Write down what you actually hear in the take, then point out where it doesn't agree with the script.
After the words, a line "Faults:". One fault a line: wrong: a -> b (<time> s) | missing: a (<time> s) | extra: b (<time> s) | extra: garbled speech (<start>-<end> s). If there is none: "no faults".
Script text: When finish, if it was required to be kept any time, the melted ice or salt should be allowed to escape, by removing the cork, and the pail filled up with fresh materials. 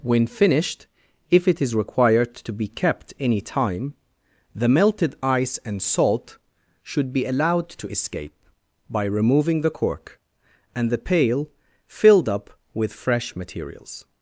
When finished, if it is required to be kept any time, the melted ice and salt should be allowed to escape, by removing the cork, and the pail filled up with fresh materials.
Faults:
wrong: finish -> finished (0.2 s)
wrong: was -> is (1.6 s)
wrong: or -> and (5.7 s)